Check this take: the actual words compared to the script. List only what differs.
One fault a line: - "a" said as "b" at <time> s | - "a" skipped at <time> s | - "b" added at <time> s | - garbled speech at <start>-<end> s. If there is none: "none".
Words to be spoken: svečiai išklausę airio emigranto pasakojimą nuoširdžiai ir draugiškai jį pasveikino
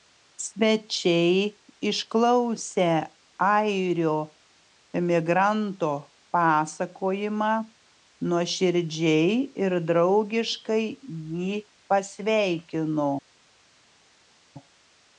none